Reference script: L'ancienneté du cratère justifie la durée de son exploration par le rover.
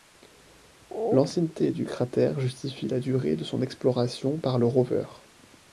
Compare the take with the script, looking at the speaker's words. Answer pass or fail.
pass